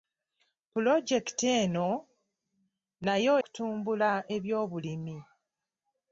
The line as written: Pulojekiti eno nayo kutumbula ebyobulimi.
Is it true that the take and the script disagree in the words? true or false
false